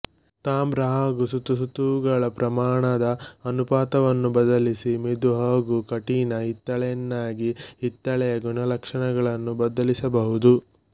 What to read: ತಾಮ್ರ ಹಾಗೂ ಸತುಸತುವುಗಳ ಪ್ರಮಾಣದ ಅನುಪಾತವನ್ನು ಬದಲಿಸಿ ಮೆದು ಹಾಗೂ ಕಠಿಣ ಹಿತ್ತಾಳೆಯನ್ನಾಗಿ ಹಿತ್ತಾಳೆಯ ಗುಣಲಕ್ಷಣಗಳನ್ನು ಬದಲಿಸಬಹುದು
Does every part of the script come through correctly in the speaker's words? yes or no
yes